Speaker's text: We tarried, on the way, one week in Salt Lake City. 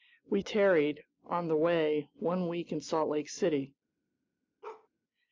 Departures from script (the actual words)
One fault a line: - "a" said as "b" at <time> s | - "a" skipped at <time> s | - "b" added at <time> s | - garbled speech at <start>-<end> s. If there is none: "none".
none